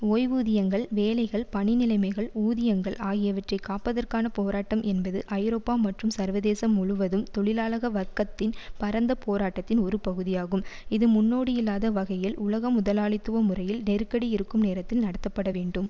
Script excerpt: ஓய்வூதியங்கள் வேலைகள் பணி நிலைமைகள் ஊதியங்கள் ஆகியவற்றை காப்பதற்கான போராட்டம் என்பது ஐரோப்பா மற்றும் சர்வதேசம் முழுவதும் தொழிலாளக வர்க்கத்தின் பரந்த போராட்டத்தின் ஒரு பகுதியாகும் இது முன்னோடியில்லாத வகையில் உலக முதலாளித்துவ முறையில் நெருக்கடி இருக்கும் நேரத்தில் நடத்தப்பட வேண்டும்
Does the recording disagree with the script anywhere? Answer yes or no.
no